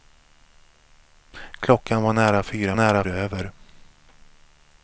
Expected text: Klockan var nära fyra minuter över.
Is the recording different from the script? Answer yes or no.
yes